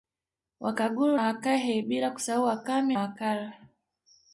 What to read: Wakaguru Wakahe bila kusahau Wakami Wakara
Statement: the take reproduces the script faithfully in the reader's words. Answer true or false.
true